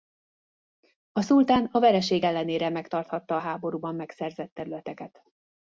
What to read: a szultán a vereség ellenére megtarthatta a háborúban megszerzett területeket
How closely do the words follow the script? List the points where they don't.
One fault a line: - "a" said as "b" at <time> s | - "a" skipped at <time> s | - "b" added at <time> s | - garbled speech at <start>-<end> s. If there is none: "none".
none